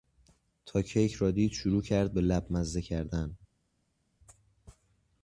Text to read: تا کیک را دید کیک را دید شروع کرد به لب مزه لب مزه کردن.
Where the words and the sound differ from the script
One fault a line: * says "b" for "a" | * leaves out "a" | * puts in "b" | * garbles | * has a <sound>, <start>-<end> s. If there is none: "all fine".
* leaves out "کیک را دید"
* leaves out "لب مزه"